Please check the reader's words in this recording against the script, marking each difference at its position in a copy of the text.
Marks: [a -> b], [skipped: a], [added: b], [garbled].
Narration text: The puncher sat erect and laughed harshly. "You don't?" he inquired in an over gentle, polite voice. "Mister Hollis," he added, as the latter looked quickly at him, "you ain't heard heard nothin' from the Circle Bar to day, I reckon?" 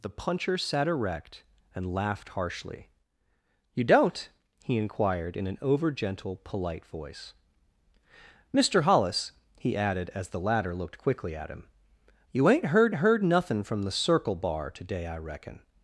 The puncher sat erect and laughed harshly. "You don't?" he inquired in an over gentle, polite voice. "Mister Hollis," he added, as the latter looked quickly at him, "you ain't heard heard nothin' from the Circle Bar to day, I reckon?"